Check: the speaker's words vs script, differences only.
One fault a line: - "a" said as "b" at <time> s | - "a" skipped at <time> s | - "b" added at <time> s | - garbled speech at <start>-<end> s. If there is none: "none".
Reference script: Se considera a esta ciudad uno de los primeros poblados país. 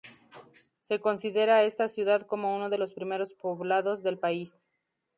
- "como" added at 2.2 s
- "del" added at 4.0 s